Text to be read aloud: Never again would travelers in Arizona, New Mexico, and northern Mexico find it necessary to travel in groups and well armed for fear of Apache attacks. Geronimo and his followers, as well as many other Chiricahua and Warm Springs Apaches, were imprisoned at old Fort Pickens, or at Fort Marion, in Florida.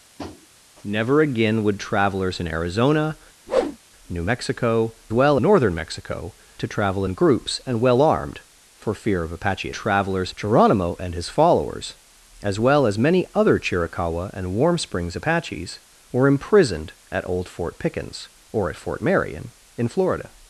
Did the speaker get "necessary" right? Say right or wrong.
wrong